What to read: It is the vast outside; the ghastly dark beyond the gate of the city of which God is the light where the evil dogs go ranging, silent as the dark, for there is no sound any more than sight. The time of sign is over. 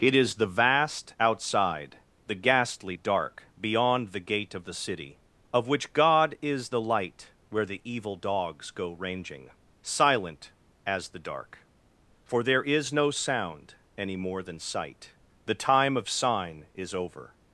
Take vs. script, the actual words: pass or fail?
pass